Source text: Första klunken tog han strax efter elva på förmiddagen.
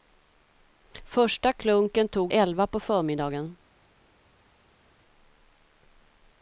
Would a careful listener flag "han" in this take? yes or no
yes